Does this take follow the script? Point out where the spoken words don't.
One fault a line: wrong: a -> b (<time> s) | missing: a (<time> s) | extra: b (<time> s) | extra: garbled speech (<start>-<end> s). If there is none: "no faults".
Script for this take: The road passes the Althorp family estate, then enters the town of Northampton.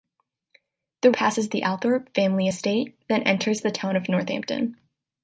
missing: road (1.1 s)